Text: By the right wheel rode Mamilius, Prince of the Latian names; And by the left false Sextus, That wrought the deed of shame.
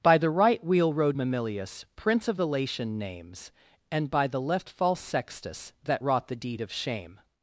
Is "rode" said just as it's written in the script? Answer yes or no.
yes